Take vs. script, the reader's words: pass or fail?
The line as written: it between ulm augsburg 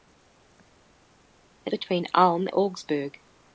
pass